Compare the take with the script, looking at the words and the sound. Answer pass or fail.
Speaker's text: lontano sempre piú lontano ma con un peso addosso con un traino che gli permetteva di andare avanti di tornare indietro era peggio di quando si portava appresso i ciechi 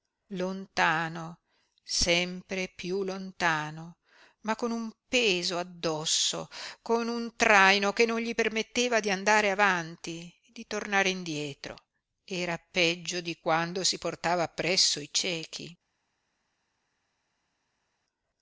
fail